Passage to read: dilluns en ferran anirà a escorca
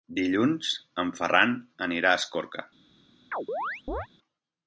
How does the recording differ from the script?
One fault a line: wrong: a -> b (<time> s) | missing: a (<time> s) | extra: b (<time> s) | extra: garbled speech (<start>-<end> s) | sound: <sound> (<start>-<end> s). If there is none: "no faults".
sound: chirp (3.3-4.1 s)